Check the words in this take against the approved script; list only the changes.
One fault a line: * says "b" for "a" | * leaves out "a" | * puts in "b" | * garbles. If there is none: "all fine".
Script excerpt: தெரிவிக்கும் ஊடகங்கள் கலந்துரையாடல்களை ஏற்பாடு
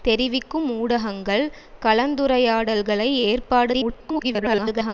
* garbles